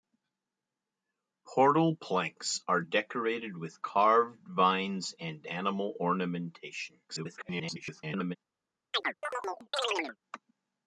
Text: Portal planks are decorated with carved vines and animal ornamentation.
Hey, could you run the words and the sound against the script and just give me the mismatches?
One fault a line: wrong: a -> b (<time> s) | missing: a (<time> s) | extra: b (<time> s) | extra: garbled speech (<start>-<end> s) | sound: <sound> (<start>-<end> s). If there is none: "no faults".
extra: garbled speech (7.1-8.4 s)
sound: chirp (8.9-10.2 s)